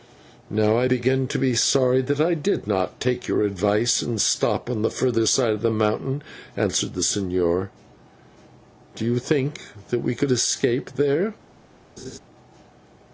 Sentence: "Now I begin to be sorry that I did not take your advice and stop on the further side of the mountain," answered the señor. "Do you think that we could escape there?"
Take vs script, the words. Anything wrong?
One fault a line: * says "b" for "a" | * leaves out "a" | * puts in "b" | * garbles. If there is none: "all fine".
all fine